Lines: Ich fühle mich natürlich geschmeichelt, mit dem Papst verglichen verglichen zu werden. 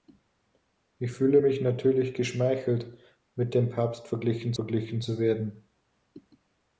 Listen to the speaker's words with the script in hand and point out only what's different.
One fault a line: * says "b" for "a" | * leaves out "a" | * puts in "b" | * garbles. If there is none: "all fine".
all fine